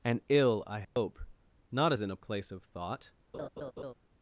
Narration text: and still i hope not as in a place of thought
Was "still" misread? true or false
true